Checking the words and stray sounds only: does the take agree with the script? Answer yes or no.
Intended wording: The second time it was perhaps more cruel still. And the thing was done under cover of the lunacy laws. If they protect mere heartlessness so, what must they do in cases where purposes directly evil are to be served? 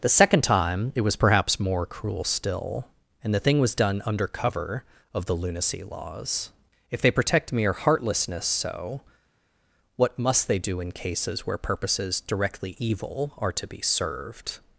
yes